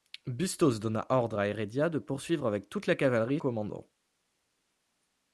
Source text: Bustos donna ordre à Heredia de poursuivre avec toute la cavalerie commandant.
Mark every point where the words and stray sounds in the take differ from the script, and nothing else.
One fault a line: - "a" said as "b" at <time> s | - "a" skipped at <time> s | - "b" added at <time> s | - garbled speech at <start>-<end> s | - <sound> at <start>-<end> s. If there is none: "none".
none